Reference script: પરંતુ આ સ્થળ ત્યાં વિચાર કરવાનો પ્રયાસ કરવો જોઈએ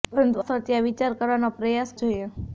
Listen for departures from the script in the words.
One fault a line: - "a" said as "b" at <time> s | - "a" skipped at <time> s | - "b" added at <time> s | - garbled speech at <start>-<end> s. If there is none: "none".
- "આ" skipped at 0.4 s
- "કરવો" skipped at 2.0 s